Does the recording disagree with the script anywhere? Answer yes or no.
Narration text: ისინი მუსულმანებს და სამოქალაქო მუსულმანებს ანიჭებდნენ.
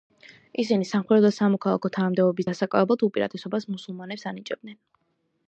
yes